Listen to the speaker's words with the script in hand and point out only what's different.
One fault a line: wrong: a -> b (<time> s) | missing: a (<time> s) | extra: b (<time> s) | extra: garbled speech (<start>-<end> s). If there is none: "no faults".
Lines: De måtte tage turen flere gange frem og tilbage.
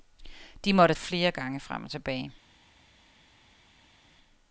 missing: tage turen (0.9 s)